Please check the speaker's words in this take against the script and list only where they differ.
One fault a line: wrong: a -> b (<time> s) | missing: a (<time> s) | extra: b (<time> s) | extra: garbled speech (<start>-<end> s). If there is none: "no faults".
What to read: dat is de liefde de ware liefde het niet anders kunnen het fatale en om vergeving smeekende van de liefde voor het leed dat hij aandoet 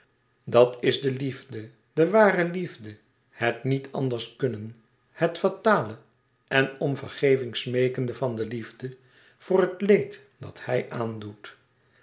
no faults